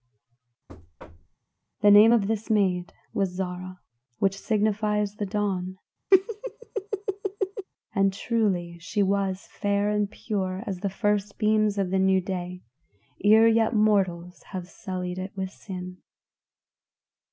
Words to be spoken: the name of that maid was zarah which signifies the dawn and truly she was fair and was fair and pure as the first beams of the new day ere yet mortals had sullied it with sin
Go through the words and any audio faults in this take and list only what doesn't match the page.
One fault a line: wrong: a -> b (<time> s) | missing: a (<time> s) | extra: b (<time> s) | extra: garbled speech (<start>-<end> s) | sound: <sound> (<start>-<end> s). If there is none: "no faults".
sound: thud (0.7-1.4 s)
wrong: that -> this (2.3 s)
sound: laugh (6.1-7.7 s)
missing: was fair and (10.1 s)
wrong: had -> have (14.5 s)